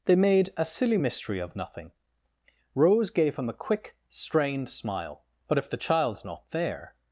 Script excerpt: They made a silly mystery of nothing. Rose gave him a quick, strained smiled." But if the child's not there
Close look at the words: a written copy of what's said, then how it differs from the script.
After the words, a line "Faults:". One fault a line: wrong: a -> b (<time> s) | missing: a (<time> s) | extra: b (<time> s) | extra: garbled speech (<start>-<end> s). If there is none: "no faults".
They made a silly mystery of nothing. Rose gave him a quick, strained smile." But if the child's not there
Faults:
wrong: smiled -> smile (4.7 s)